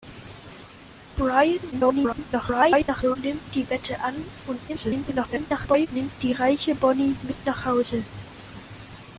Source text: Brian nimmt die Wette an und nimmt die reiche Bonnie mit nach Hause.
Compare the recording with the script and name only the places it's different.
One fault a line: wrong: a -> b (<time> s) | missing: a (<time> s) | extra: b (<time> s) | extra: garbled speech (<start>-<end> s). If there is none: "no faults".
extra: garbled speech (1.7-3.2 s)
extra: garbled speech (4.7-5.9 s)